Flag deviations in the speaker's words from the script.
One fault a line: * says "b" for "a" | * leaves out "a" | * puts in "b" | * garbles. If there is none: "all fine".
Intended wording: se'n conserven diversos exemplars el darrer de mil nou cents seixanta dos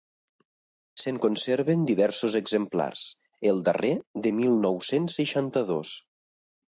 all fine